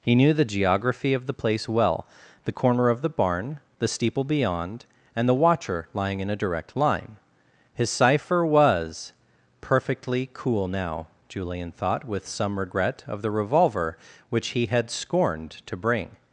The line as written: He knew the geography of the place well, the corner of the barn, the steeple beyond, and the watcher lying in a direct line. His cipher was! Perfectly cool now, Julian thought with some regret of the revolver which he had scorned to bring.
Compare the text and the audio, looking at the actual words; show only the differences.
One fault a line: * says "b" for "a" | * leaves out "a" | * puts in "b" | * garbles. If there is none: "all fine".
all fine